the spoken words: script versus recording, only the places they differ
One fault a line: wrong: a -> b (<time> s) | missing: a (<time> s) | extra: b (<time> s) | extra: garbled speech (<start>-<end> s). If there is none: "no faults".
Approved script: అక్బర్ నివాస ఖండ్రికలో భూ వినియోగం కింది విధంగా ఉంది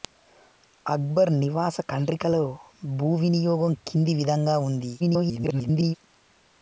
extra: garbled speech (5.0-6.0 s)